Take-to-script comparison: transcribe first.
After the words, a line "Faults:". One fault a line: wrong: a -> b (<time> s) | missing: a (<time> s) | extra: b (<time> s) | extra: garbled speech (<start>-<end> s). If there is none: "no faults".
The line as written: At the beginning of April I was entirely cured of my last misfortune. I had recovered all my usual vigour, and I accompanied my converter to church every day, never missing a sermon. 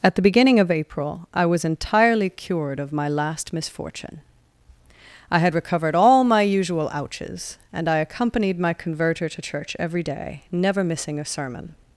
At the beginning of April I was entirely cured of my last misfortune. I had recovered all my usual ouches, and I accompanied my converter to church every day, never missing a sermon.
Faults:
wrong: vigour -> ouches (6.9 s)